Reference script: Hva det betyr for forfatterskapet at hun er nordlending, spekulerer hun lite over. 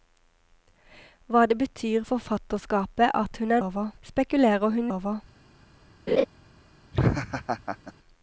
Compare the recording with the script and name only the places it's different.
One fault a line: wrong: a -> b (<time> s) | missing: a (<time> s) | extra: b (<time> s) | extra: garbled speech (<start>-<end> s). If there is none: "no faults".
missing: for (2.0 s)
wrong: nordlending -> over (3.6 s)
missing: lite (4.9 s)